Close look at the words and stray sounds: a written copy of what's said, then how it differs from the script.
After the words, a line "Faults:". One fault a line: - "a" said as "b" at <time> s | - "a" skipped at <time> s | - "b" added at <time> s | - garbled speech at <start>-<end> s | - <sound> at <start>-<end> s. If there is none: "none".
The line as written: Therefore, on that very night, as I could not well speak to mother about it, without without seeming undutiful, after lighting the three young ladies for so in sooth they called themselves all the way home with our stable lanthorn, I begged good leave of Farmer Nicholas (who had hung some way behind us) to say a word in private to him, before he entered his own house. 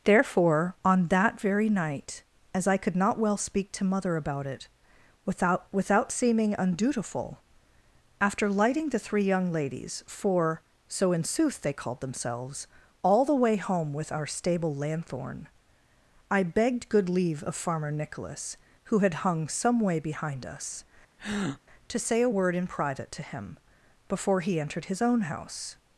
Therefore, on that very night, as I could not well speak to mother about it, without without seeming undutiful, after lighting the three young ladies for so in sooth they called themselves all the way home with our stable lanthorn, I begged good leave of Farmer Nicholas (who had hung some way behind us) to say a word in private to him, before he entered his own house.
Faults:
- breath at 21.2-21.6 s